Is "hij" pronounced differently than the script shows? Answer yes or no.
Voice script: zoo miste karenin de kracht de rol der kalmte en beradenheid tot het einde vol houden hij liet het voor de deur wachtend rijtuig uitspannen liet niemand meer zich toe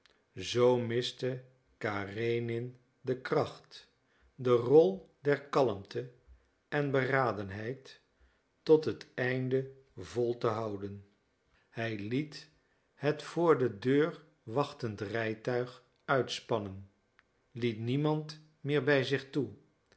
no